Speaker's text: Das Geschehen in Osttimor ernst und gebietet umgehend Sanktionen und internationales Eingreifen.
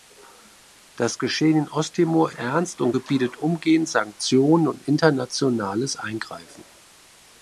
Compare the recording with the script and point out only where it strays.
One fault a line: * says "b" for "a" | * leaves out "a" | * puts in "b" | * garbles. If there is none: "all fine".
all fine